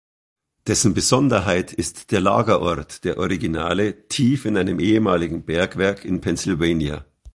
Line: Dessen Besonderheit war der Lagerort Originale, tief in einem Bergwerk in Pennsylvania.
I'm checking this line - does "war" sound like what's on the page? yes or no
no